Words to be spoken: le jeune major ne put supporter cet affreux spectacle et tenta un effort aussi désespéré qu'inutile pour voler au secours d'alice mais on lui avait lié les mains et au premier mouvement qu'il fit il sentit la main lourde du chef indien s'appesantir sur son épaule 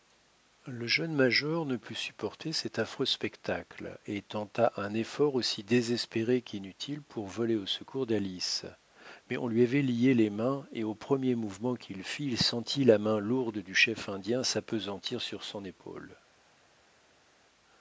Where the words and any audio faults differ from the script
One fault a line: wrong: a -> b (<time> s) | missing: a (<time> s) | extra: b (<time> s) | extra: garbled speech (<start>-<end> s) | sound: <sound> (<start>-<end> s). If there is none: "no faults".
no faults